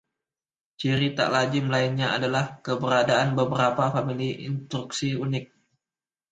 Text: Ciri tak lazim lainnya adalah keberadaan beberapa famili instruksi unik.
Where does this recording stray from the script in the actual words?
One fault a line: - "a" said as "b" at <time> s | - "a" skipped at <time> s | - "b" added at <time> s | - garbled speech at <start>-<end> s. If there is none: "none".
none